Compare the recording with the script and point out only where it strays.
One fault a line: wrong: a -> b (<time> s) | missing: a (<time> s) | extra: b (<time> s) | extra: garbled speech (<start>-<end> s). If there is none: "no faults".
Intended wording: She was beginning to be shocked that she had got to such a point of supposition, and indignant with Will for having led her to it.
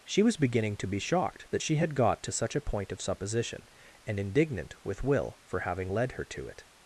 no faults